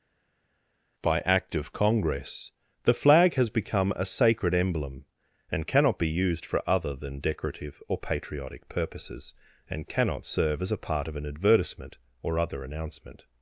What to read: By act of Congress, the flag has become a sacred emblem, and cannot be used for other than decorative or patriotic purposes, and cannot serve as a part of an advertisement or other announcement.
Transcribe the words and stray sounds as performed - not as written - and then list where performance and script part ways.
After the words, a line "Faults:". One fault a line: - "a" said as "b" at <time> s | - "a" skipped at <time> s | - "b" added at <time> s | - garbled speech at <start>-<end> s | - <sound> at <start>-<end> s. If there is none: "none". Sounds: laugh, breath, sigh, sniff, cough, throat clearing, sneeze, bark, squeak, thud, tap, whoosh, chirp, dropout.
By act of Congress, the flag has become a sacred emblem, and cannot be used for other than decorative or patriotic purposes, and cannot serve as a part of an advertisement or other announcement.
Faults:
none